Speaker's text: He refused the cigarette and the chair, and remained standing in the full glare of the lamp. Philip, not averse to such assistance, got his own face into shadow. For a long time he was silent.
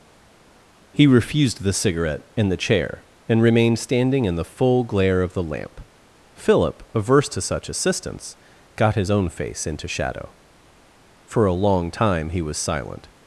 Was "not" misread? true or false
true